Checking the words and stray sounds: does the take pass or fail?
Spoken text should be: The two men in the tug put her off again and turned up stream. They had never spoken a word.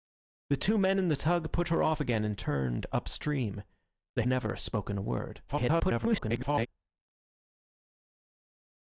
fail